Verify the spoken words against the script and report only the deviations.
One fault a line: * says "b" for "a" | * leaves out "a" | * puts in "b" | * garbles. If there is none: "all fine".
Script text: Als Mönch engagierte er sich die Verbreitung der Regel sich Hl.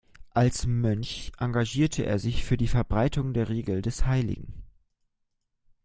* puts in "für"
* says "des" for "sich"